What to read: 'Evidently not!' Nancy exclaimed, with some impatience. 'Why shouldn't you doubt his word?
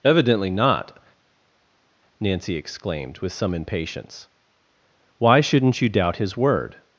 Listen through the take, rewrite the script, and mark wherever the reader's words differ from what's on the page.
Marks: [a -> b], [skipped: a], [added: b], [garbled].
'Evidently not!' Nancy exclaimed, with some impatience. 'Why shouldn't you doubt his word?